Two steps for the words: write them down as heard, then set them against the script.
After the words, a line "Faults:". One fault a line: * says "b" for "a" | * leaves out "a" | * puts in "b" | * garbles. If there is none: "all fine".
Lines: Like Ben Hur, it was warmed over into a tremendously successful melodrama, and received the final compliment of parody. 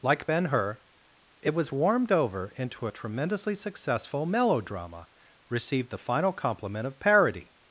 Like Ben Hur, it was warmed over into a tremendously successful melodrama, received the final compliment of parody.
Faults:
* leaves out "and"